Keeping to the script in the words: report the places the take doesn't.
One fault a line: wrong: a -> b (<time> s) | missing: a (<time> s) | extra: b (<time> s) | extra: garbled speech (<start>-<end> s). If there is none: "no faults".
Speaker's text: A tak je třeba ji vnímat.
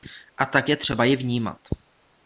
no faults